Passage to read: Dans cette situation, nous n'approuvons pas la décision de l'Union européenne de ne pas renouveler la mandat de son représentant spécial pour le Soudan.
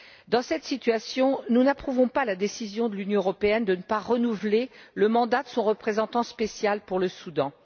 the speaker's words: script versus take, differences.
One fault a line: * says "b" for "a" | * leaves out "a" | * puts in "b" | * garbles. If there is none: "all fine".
* says "le" for "la"